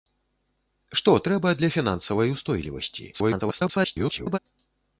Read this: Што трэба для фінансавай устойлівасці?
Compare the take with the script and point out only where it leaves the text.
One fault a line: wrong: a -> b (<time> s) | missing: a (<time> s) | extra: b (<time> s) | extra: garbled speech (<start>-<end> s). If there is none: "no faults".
extra: garbled speech (3.1-4.4 s)